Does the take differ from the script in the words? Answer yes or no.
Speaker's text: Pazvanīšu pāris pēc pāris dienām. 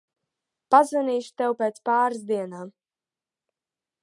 yes